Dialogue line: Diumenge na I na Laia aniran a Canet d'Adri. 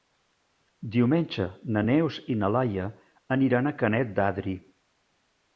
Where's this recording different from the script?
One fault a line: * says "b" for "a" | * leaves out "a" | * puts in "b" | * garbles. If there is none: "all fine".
* puts in "Neus"